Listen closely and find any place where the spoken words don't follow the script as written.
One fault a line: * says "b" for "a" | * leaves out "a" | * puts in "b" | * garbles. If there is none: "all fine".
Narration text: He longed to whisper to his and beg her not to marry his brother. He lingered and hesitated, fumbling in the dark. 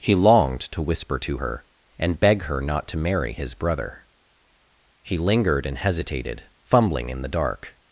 * says "her" for "his"